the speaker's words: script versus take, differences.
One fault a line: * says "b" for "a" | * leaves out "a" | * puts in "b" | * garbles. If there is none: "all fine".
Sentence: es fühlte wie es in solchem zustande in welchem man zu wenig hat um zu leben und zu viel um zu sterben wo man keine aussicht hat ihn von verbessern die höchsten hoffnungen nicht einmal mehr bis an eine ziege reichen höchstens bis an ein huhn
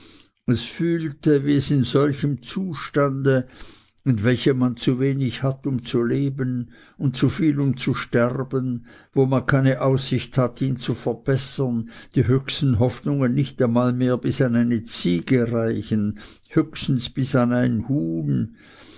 * says "zu" for "von"